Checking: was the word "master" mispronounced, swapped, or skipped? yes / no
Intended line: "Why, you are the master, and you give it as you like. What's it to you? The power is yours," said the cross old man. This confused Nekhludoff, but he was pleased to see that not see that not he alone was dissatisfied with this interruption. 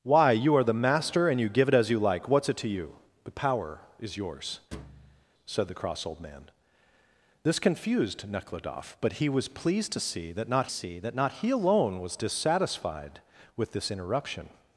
no